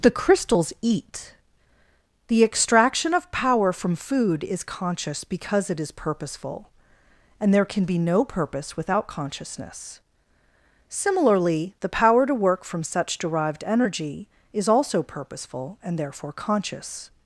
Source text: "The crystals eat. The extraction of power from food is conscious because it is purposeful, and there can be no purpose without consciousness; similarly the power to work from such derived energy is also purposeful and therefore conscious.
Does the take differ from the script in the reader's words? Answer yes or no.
no